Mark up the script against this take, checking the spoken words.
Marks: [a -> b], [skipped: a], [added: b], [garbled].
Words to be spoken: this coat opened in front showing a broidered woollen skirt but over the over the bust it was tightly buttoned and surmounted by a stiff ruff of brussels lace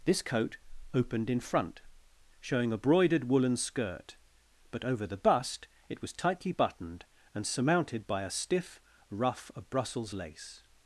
this coat opened in front showing a broidered woollen skirt but over the [skipped: over the] bust it was tightly buttoned and surmounted by a stiff ruff of brussels lace